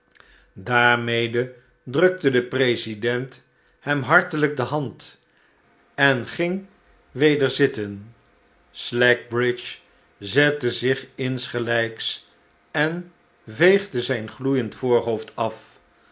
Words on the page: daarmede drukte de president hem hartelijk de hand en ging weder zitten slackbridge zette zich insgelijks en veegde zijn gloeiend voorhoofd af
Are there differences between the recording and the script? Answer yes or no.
no